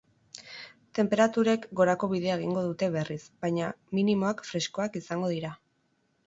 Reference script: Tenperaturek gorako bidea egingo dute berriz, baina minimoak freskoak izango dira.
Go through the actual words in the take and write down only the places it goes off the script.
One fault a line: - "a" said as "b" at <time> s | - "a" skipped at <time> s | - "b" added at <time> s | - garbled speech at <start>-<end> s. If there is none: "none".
none